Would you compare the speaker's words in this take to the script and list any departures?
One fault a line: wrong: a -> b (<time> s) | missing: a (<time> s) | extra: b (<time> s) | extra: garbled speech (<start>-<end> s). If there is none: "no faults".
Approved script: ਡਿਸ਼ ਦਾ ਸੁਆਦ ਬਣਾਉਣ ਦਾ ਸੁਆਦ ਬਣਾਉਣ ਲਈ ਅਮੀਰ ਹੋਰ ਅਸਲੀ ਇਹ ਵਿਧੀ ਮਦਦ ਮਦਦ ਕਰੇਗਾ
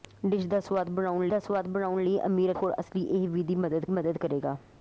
no faults